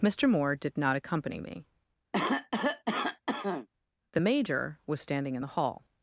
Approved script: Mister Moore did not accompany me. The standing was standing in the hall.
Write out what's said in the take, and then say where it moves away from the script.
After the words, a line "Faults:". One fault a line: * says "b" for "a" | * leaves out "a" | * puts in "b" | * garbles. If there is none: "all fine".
Mister Moore did not accompany me. The major was standing in the hall.
Faults:
* says "major" for "standing"